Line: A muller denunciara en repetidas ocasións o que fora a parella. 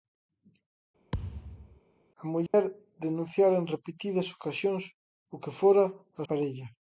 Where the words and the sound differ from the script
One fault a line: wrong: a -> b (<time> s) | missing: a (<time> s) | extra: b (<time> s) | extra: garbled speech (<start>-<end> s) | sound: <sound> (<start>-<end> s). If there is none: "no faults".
sound: thud (1.1-1.8 s)
sound: dropout (2.5-2.5 s)